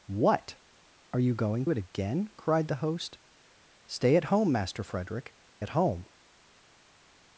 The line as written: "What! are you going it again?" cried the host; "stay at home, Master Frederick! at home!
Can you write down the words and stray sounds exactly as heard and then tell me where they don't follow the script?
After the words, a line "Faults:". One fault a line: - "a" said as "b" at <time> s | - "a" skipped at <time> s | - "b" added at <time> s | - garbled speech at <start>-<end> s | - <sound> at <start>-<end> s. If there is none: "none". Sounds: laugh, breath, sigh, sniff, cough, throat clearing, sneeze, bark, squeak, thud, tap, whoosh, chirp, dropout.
"What! are you going it again?" cried the host; "stay at home, Master Frederick! at home!
Faults:
none